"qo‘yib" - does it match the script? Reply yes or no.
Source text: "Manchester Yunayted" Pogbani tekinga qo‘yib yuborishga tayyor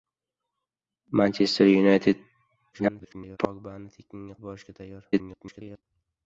no